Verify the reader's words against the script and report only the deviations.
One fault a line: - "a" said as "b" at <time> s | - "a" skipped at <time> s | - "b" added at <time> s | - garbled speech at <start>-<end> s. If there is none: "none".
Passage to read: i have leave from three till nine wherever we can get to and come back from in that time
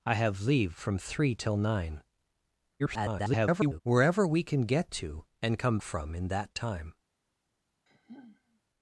- garbled speech at 2.8-3.8 s
- "back" skipped at 5.8 s